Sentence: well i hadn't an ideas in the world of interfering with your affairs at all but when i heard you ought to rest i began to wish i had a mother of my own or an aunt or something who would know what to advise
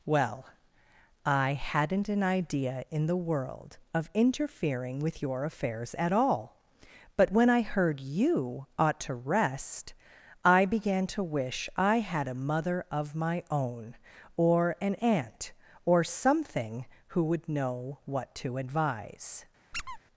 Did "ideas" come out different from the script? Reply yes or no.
yes